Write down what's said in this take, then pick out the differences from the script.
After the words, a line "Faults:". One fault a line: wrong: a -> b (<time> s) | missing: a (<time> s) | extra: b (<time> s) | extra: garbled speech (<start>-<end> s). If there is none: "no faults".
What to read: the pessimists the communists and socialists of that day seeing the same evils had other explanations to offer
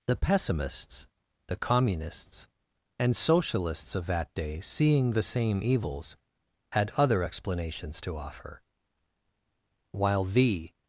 the pessimists the communists and socialists of that day seeing the same evils had other explanations to offer while the
Faults:
extra: while the (9.9 s)